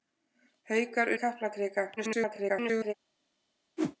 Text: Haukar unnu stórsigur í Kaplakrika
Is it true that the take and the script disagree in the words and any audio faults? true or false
true